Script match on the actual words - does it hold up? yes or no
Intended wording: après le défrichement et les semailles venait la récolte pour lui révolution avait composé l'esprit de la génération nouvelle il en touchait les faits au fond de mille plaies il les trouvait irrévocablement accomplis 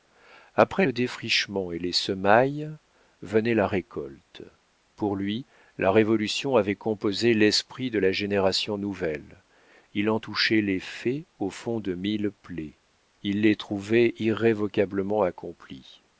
no